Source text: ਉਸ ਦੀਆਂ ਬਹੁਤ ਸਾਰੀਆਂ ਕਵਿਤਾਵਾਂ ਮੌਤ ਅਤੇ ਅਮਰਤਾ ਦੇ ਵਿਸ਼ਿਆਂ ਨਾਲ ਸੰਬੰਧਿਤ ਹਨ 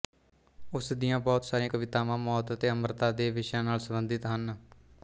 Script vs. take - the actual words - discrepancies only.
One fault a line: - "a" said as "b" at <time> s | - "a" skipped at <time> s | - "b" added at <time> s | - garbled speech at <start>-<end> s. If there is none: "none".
none